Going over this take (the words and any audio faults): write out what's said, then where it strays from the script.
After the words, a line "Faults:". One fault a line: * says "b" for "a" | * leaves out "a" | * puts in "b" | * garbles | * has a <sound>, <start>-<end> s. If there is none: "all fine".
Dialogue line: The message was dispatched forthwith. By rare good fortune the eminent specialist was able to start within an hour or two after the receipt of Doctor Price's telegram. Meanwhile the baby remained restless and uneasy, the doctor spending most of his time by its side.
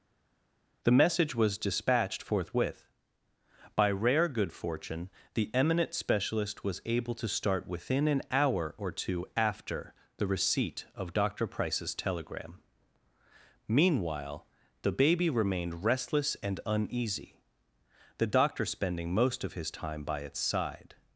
The message was dispatched forthwith. By rare good fortune the eminent specialist was able to start within an hour or two after the receipt of Doctor Price's telegram. Meanwhile the baby remained restless and uneasy, the doctor spending most of his time by its side.
Faults:
all fine